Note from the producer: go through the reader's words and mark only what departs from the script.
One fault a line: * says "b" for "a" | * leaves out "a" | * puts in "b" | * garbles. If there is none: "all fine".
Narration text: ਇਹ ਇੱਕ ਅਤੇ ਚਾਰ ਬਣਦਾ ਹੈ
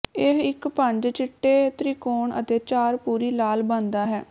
* puts in "ਪੰਜ ਚਿੱਟੇ ਤ੍ਰਿਕੋਣ"
* puts in "ਪੂਰੀ ਲਾਲ"